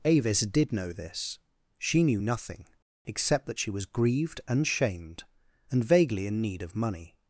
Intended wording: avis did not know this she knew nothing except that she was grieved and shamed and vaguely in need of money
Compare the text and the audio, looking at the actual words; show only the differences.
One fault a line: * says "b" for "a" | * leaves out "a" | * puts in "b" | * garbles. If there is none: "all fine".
* leaves out "not"